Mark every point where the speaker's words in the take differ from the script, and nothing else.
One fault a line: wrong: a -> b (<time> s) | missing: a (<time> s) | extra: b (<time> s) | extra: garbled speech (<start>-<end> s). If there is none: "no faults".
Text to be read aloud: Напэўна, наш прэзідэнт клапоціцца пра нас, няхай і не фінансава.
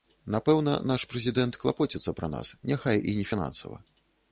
no faults